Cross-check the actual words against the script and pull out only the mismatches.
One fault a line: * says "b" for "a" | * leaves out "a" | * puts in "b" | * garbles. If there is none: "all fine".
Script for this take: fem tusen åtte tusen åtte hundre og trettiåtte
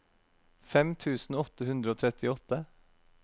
* leaves out "tusen åtte"